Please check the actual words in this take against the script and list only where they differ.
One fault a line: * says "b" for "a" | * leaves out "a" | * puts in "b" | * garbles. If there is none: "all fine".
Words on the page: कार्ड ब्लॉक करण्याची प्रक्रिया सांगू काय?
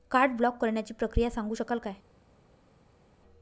* puts in "शकाल"